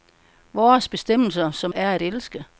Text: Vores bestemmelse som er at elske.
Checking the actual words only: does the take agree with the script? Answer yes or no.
yes